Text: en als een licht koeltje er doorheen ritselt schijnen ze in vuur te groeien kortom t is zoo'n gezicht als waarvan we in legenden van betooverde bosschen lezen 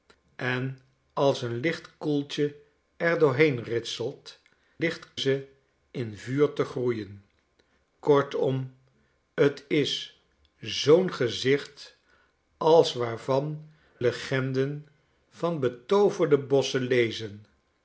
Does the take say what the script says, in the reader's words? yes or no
no